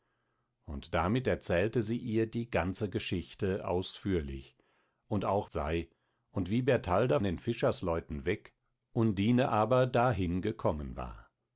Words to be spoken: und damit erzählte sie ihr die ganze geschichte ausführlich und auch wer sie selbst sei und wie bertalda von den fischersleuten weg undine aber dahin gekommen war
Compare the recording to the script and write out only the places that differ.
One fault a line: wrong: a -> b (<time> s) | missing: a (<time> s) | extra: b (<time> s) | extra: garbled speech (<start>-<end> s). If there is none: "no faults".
missing: wer sie selbst (5.5 s)
missing: von (7.2 s)